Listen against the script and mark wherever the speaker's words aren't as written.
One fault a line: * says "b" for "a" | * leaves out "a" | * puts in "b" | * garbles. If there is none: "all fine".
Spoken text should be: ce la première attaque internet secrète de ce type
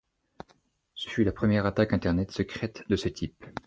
* puts in "fut"